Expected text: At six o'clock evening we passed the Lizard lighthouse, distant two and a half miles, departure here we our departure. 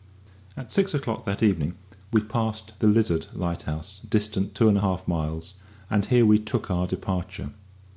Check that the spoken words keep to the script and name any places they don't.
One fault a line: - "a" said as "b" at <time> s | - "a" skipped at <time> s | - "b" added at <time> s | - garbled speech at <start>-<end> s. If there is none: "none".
- "that" added at 1.2 s
- "departure" said as "and" at 5.9 s
- "took" added at 6.4 s